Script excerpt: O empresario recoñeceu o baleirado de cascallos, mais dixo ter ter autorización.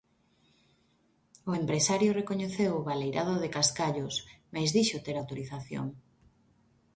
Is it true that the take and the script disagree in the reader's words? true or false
true